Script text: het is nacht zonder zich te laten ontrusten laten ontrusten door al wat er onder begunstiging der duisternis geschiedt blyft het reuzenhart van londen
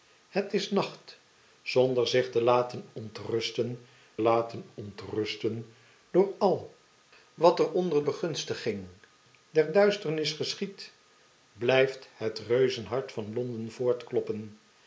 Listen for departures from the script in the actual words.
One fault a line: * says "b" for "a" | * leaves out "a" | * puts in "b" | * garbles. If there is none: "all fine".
all fine